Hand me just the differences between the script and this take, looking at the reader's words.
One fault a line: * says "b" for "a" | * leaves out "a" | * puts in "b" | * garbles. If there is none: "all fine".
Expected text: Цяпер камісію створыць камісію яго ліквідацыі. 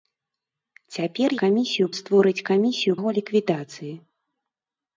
all fine